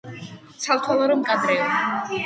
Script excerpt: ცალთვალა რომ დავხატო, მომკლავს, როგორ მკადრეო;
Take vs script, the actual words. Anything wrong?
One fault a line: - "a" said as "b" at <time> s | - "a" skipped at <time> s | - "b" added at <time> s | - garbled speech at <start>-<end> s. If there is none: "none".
- "დავხატო მომკლავს როგორ" skipped at 1.2 s